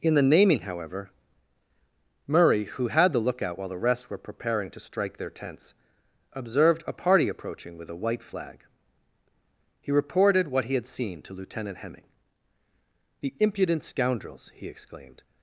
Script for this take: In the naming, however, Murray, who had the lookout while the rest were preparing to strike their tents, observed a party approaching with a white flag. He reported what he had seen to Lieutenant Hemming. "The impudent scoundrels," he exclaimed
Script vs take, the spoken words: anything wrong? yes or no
no